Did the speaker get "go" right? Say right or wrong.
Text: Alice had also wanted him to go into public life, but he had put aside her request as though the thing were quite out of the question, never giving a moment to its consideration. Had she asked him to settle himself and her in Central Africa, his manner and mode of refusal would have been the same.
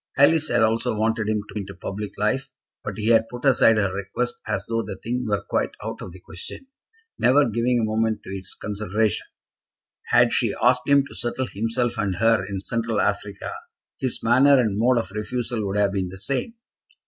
wrong